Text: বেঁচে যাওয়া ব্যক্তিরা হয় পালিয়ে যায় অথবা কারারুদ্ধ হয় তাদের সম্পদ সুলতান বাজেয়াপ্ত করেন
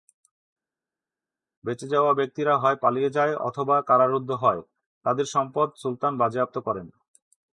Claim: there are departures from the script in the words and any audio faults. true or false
false